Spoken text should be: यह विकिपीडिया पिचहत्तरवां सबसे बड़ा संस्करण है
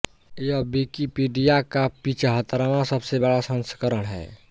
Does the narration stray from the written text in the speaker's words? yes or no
yes